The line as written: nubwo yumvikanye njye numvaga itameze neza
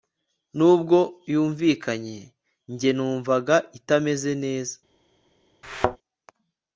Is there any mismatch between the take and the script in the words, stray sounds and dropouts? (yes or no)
yes